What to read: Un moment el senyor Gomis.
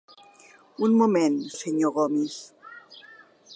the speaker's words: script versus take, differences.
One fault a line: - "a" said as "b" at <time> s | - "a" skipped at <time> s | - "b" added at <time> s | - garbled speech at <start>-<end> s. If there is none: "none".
none